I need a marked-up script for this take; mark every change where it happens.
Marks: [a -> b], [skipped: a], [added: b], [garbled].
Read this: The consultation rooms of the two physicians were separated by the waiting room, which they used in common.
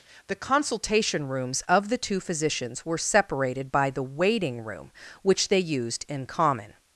The consultation rooms of the two physicians were separated by the waiting room, which they used in common.